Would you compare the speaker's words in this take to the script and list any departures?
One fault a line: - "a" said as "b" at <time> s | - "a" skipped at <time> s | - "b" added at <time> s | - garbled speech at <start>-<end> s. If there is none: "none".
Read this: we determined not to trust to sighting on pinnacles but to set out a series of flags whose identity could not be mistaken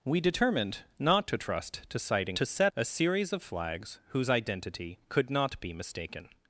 - "on pinnacles but" skipped at 2.4 s
- "out" skipped at 2.7 s